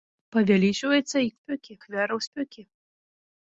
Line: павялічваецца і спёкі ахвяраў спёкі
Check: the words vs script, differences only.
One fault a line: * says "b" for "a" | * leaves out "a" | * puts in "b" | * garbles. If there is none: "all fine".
all fine